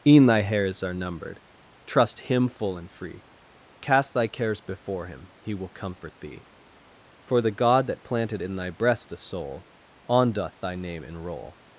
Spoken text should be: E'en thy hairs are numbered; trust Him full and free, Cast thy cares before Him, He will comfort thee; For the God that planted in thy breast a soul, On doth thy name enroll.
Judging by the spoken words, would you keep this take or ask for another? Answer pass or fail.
pass